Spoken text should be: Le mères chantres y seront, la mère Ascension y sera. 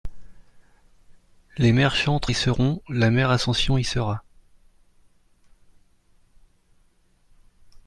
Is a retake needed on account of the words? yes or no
yes